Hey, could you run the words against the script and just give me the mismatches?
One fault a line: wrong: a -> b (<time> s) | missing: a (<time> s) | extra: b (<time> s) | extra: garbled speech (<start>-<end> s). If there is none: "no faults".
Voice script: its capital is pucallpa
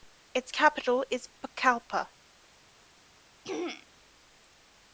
no faults